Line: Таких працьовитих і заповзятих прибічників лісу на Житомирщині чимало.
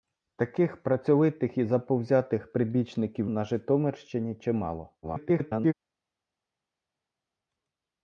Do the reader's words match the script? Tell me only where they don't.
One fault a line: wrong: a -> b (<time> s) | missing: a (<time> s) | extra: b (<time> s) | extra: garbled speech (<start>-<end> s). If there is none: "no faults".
missing: лісу (3.3 s)
extra: garbled speech (5.0-5.7 s)